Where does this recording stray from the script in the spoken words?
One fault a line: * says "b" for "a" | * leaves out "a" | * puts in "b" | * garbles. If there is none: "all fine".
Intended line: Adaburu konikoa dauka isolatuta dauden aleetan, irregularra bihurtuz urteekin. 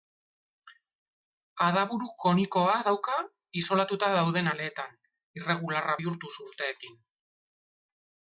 all fine